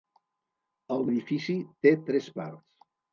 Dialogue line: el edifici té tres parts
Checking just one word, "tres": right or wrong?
right